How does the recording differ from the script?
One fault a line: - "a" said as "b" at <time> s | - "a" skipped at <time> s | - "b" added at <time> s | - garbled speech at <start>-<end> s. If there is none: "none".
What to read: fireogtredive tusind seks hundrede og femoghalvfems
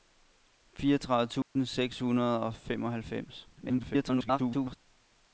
- garbled speech at 3.6-4.8 s